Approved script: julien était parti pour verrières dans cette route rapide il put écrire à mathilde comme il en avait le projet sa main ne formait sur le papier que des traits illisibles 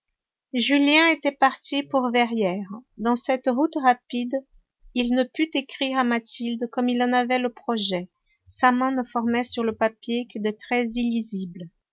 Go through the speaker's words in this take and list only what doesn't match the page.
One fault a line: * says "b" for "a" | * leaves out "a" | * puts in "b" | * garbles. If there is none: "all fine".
* puts in "ne"